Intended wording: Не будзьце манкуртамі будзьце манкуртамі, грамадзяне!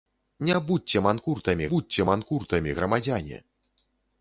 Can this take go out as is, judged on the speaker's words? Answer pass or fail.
pass